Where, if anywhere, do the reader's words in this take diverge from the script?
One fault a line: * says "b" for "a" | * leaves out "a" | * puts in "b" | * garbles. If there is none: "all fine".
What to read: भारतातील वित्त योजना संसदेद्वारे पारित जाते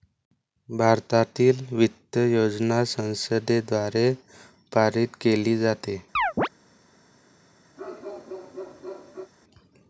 * puts in "केली"